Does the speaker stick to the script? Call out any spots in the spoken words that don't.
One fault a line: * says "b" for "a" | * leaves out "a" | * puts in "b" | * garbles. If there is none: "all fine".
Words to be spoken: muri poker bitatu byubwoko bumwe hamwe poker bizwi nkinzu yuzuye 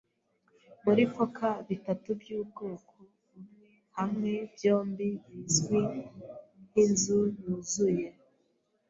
* says "byombi" for "poker"